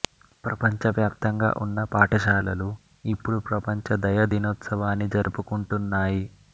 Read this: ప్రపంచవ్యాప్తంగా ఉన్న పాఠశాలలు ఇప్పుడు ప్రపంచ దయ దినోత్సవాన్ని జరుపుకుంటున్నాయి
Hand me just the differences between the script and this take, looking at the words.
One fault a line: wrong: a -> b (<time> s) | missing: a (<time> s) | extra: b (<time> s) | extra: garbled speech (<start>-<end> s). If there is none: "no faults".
no faults